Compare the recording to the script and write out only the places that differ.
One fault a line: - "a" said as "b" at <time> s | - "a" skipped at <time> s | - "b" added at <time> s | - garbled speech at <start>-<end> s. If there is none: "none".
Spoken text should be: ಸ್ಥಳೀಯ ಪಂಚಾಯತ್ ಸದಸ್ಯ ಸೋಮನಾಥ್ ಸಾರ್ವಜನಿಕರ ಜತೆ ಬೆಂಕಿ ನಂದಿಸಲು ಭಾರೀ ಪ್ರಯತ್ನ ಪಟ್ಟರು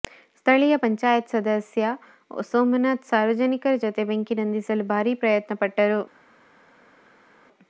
none